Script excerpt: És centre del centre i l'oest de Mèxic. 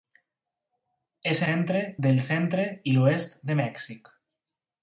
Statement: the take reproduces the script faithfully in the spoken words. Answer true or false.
true